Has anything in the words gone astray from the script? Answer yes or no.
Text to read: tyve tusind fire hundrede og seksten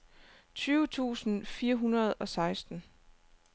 no